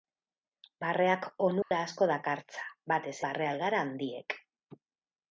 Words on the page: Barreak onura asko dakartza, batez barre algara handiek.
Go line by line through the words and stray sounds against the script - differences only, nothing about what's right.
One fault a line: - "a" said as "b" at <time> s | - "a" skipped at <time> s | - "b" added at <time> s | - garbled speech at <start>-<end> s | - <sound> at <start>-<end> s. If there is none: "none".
- dropout at 1.6-1.7 s